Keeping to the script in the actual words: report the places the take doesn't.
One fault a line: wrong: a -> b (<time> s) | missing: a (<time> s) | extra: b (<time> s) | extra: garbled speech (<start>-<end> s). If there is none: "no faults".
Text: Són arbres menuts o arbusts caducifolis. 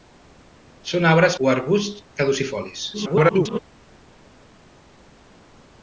missing: menuts (1.4 s)
extra: garbled speech (2.9-3.6 s)